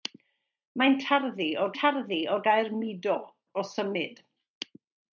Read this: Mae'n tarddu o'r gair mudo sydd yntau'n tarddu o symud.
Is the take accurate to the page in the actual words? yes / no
no